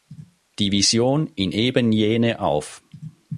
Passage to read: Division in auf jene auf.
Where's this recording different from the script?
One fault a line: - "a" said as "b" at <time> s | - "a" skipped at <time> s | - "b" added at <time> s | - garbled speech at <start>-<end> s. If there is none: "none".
- "auf" said as "eben" at 1.5 s